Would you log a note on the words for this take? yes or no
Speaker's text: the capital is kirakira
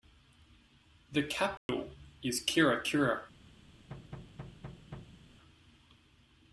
no